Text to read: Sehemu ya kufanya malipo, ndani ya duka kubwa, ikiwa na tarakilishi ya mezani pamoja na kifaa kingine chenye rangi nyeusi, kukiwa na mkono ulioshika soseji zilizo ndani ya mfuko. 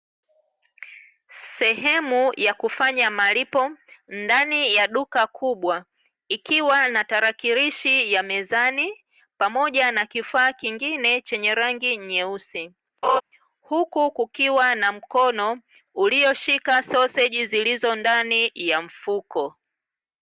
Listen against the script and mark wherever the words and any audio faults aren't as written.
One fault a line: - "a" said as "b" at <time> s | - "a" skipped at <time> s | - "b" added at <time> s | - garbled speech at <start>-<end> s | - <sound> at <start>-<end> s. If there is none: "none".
- laugh at 13.0-13.2 s
- "huku" added at 13.6 s